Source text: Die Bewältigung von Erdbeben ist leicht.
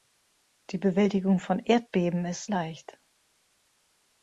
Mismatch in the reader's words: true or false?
false